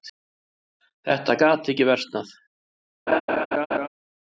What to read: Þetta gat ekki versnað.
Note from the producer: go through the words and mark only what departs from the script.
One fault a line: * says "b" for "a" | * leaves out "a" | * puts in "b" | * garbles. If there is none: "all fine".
all fine